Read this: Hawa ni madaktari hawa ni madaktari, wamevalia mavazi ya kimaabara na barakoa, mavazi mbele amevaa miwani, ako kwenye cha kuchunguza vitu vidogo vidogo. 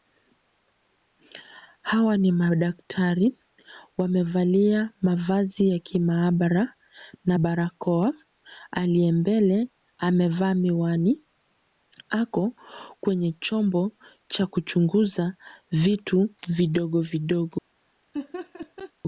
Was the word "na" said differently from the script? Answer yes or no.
no